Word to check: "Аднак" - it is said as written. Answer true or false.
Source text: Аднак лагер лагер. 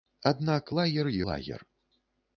true